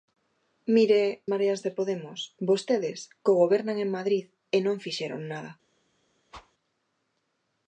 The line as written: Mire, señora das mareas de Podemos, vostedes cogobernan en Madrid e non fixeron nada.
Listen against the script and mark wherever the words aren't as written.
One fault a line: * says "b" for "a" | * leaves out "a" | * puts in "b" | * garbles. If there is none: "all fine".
* leaves out "señora das"